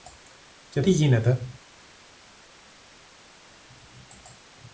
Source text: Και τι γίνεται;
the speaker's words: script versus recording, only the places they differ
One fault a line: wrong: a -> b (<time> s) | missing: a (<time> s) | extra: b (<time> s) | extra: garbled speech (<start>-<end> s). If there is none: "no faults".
no faults